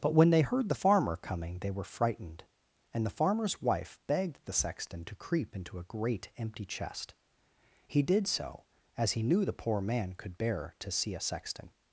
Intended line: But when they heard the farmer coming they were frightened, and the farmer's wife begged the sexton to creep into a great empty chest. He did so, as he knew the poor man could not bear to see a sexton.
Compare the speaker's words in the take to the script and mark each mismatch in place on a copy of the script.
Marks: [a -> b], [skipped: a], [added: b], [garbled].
But when they heard the farmer coming they were frightened, and the farmer's wife begged the sexton to creep into a great empty chest. He did so, as he knew the poor man could [skipped: not] bear to see a sexton.